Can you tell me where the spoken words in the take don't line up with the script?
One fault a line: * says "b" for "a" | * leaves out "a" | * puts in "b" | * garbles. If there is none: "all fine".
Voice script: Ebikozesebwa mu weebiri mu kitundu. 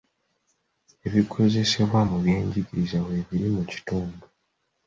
* puts in "byenjigiriza"